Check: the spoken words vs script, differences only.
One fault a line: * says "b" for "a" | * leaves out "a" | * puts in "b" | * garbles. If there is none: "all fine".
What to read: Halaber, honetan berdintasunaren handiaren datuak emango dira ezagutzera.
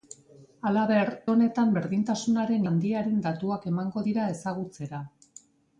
all fine